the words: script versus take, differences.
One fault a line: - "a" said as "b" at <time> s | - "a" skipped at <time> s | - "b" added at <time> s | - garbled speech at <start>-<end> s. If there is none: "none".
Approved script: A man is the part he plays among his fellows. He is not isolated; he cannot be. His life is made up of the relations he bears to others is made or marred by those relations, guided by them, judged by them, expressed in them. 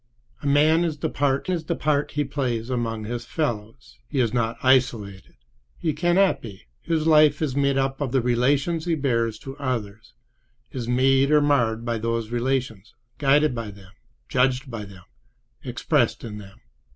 - "is the part" added at 1.5 s